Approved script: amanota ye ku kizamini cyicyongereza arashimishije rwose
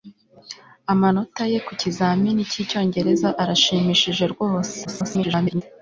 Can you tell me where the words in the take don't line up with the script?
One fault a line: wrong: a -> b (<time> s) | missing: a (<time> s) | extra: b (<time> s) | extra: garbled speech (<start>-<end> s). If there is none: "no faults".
extra: garbled speech (4.8-5.6 s)